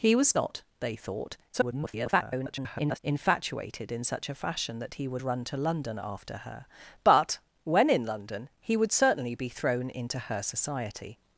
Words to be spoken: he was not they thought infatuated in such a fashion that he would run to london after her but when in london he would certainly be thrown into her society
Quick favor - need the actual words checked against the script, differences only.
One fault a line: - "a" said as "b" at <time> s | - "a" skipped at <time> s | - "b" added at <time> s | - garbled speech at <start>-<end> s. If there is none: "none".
- garbled speech at 1.5-3.0 s